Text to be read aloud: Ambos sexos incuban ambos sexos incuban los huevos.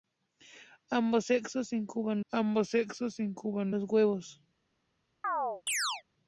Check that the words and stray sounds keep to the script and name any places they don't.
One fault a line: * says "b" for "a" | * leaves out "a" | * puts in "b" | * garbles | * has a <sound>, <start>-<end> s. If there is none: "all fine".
* has a chirp, 5.2-6.0 s